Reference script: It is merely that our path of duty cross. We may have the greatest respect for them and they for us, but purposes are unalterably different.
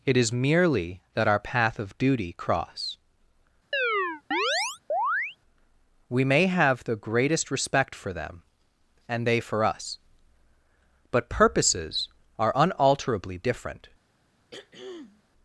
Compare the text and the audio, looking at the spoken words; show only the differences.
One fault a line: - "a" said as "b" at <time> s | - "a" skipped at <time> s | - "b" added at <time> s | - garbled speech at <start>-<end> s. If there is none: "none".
none